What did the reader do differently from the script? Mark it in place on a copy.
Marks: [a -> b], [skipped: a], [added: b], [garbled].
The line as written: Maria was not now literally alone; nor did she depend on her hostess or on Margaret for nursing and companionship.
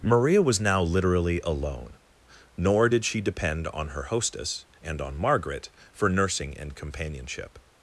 Maria was [skipped: not] now literally alone; nor did she depend on her hostess [or -> and] on Margaret for nursing and companionship.